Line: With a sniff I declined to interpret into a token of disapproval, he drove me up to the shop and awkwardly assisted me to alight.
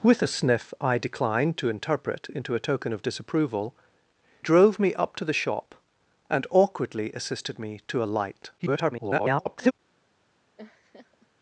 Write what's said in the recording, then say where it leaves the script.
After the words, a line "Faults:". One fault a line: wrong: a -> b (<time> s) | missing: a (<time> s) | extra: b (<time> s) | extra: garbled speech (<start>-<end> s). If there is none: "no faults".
With a sniff I declined to interpret into a token of disapproval, drove me up to the shop and awkwardly assisted me to alight. [garbled]
Faults:
missing: he (3.8 s)
extra: garbled speech (8.6-9.7 s)